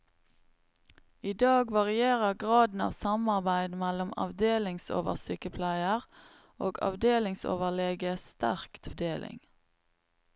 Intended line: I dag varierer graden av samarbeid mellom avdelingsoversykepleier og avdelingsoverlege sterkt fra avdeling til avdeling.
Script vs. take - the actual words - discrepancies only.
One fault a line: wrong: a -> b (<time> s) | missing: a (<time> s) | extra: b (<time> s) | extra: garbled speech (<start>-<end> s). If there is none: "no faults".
missing: fra avdeling til (8.9 s)